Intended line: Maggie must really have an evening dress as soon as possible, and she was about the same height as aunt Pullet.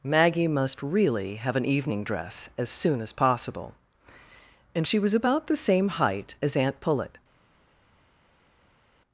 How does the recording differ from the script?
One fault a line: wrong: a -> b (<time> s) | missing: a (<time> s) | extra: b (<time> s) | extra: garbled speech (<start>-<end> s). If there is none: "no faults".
no faults